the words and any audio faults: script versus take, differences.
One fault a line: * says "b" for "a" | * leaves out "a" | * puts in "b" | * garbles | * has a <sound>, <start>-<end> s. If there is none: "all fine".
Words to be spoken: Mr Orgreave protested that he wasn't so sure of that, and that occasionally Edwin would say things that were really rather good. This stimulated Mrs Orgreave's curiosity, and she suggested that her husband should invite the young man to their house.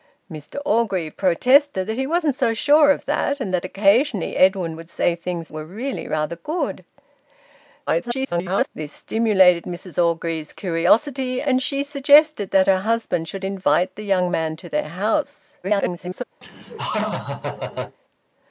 * leaves out "that"
* garbles
* garbles
* has a laugh, 16.4-18.0 s